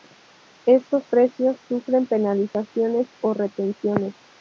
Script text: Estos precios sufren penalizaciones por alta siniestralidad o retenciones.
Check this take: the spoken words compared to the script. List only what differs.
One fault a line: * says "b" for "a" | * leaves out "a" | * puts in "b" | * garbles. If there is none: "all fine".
* leaves out "por alta siniestralidad"